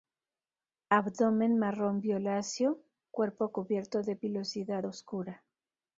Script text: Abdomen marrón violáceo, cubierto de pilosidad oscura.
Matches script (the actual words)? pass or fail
fail